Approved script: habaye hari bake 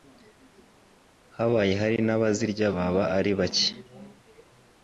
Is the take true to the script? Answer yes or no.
no